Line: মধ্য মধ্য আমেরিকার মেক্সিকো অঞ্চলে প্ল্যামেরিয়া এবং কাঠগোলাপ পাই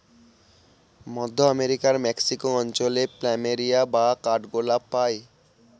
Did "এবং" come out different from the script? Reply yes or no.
yes